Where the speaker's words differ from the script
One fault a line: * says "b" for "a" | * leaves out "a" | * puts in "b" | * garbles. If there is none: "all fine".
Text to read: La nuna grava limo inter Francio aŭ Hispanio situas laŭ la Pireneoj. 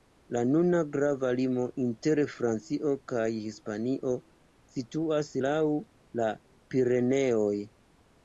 * says "kaj" for "aŭ"